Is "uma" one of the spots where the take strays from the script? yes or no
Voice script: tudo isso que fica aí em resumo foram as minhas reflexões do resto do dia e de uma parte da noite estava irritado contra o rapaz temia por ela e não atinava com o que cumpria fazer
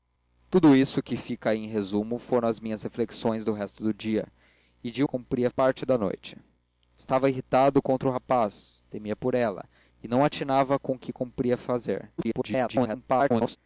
yes